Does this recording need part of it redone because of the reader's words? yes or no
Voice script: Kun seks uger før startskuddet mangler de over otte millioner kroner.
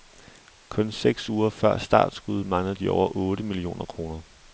no